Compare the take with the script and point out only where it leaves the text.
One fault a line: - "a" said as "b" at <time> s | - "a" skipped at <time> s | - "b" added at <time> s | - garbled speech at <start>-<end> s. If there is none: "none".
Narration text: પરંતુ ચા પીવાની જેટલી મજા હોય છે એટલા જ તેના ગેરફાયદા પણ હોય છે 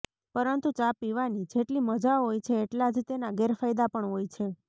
none